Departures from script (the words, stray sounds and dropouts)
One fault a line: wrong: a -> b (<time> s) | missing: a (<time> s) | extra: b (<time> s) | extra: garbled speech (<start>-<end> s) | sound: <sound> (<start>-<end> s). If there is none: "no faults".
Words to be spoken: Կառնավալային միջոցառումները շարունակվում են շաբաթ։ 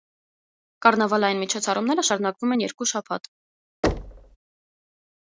extra: երկու (2.7 s)
sound: thud (3.8-4.4 s)